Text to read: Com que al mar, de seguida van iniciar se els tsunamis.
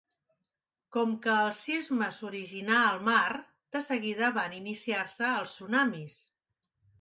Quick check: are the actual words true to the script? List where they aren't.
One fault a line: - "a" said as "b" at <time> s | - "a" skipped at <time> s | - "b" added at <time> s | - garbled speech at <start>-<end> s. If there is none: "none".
- "el sisme s'originà" added at 1.4 s